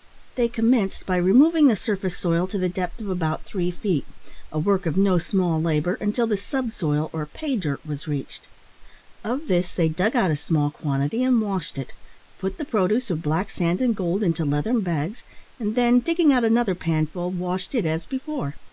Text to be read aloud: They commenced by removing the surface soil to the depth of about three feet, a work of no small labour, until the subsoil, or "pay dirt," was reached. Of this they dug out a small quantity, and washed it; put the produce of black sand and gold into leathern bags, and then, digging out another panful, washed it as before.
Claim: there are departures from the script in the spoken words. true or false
false